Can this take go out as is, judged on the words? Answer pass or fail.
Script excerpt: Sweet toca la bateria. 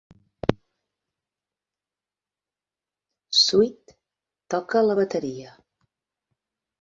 pass